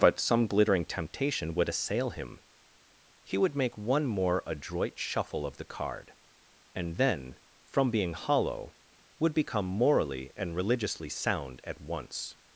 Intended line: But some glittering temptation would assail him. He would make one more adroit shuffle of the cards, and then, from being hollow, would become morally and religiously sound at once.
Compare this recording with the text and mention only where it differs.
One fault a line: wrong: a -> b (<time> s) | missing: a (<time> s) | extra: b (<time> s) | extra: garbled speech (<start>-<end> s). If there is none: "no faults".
wrong: cards -> card (5.6 s)